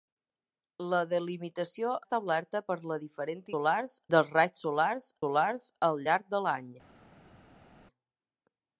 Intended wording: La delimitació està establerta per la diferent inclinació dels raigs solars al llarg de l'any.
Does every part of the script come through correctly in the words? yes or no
no